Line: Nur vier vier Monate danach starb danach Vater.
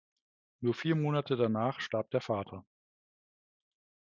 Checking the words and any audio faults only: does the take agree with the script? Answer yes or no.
no